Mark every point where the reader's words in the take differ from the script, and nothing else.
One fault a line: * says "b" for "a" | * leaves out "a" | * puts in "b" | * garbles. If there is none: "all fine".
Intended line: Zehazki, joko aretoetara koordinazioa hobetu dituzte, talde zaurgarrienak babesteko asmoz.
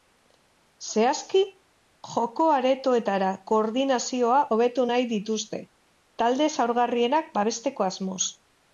* puts in "nahi"